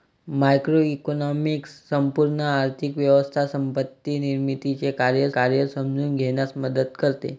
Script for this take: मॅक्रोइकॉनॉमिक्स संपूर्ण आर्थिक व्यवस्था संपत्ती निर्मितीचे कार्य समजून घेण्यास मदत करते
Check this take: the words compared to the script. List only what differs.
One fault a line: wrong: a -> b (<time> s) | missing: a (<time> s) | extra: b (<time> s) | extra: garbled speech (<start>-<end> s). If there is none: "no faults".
extra: कार्य (5.3 s)